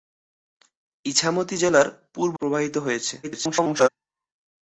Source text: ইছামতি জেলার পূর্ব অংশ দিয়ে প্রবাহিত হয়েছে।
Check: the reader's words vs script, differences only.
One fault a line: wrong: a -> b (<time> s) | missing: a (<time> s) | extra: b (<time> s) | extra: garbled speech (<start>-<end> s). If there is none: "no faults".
missing: অংশ দিয়ে (2.4 s)
extra: garbled speech (3.2-3.9 s)